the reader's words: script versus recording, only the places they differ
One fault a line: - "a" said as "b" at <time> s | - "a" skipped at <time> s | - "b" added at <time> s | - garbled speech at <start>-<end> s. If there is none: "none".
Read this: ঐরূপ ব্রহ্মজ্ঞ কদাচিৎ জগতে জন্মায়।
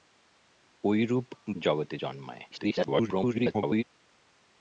- "ব্রহ্মজ্ঞ কদাচিৎ" skipped at 1.3 s
- garbled speech at 2.5-3.8 s